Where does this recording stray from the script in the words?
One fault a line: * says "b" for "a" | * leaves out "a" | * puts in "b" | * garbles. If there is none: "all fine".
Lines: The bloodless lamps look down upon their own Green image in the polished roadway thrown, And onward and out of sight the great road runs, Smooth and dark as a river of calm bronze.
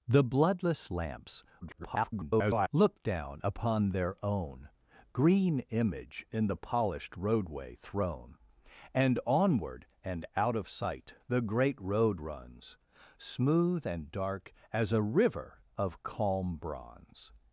* garbles